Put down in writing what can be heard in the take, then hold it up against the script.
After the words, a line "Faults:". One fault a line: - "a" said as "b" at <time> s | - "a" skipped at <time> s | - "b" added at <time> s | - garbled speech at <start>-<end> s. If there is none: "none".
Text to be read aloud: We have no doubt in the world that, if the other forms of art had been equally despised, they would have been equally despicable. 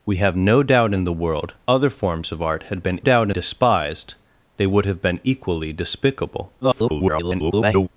We have no doubt in the world other forms of art had been doubt despised, they would have been equally despicable. [garbled]
Faults:
- "that if the" skipped at 1.5 s
- "equally" said as "doubt" at 3.0 s
- garbled speech at 6.6-7.9 s